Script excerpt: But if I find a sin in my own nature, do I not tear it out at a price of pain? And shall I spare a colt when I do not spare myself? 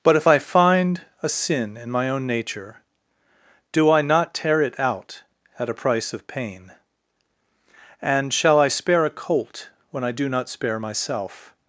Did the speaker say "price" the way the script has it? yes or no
yes